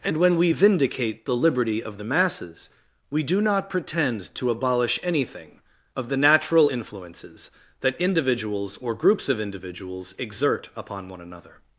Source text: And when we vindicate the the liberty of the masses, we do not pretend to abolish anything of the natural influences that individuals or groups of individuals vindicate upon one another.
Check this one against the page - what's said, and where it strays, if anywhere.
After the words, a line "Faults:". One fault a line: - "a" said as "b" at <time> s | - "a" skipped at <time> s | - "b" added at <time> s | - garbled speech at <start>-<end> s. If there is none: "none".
And when we vindicate the liberty of the masses, we do not pretend to abolish anything of the natural influences that individuals or groups of individuals exert upon one another.
Faults:
- "the" skipped at 1.3 s
- "vindicate" said as "exert" at 10.2 s